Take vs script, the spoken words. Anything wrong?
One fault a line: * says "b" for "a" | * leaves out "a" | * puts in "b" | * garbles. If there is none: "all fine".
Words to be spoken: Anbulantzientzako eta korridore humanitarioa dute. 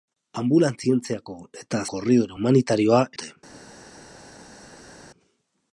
all fine